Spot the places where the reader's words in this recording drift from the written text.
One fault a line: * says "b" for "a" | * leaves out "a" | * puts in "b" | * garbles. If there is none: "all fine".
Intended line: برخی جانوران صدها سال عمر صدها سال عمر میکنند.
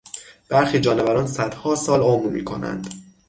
* leaves out "صدها سال عمر"